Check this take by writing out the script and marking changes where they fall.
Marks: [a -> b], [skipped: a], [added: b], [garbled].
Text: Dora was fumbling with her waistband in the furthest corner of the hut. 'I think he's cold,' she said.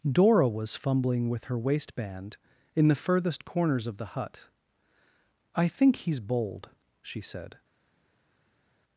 Dora was fumbling with her waistband in the furthest [corner -> corners] of the hut. 'I think he's [cold,' -> bold] she said.